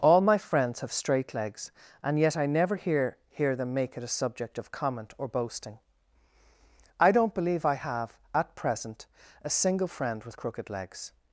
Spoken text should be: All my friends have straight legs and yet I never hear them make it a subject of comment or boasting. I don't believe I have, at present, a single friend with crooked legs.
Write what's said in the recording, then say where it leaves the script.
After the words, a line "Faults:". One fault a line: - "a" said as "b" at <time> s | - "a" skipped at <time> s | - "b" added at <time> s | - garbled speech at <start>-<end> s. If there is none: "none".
All my friends have straight legs and yet I never hear hear them make it a subject of comment or boasting. I don't believe I have, at present, a single friend with crooked legs.
Faults:
- "hear" added at 3.3 s